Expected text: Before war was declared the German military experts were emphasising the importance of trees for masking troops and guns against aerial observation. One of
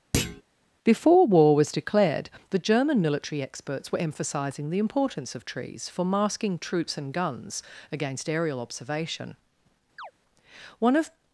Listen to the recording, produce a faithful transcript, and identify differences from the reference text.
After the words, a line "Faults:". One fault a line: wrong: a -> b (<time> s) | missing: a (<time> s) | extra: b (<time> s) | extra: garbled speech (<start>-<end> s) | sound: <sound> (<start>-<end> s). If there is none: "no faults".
Before war was declared the German military experts were emphasising the importance of trees for masking troops and guns against aerial observation. One of
Faults:
sound: thud (0.1-0.4 s)
sound: chirp (10.0-10.1 s)